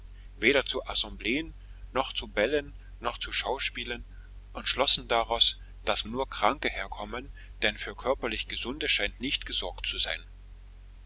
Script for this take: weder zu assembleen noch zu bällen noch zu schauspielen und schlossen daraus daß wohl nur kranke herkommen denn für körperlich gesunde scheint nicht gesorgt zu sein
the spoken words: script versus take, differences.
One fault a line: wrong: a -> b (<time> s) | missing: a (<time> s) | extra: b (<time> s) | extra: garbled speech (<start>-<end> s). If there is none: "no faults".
missing: wohl (6.0 s)